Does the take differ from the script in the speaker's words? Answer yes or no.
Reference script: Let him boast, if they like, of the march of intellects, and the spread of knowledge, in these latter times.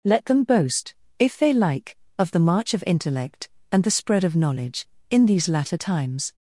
yes